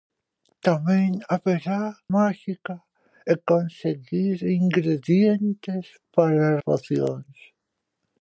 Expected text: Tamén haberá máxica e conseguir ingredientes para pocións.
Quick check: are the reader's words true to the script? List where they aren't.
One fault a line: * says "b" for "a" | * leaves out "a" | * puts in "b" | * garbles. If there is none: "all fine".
all fine